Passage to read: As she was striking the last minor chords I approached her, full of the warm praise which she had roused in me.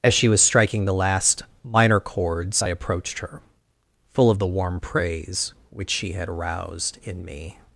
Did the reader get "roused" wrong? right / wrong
wrong